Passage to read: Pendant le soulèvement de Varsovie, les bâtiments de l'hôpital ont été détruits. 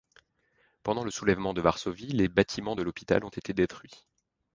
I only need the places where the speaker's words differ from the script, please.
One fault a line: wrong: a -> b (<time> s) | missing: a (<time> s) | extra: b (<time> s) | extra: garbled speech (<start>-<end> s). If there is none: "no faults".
no faults